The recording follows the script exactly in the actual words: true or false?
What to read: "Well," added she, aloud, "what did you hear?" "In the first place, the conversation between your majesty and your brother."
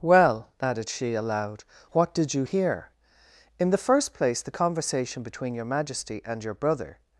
true